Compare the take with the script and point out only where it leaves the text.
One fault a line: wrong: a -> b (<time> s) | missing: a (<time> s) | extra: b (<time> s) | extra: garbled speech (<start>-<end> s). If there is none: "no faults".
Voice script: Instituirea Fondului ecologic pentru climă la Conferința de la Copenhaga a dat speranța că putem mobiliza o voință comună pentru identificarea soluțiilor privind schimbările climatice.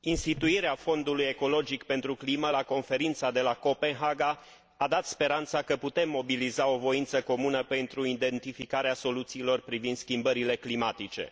no faults